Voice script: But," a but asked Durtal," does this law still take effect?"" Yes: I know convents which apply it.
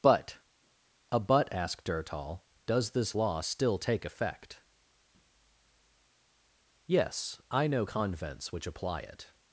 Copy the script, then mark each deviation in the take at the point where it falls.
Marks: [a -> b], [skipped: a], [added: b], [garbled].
But," a but asked Durtal," does this law still take effect?"" Yes: I know convents which apply it.